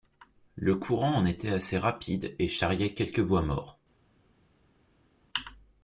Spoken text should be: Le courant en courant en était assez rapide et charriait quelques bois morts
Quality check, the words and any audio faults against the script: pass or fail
fail